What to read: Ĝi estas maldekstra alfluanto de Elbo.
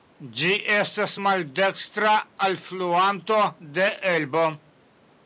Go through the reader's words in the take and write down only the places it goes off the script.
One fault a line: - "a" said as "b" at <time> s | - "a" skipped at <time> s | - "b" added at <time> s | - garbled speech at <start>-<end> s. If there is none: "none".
none